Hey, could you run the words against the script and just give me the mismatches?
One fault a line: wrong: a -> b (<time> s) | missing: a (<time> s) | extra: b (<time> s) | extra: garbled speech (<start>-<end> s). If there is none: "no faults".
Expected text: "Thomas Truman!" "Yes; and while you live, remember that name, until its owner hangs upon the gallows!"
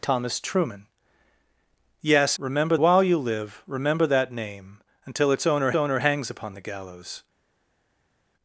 wrong: and -> remember (2.4 s)
extra: owner (5.7 s)